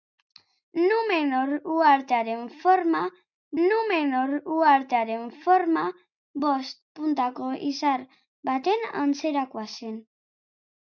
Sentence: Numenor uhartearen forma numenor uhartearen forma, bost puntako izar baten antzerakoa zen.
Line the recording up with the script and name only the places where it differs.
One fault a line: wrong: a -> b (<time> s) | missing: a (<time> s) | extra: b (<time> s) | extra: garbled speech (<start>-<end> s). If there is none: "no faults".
no faults